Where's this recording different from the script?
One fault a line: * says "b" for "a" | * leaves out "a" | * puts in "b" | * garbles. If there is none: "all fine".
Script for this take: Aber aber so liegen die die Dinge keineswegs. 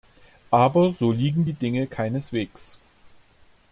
* leaves out "aber"
* leaves out "die"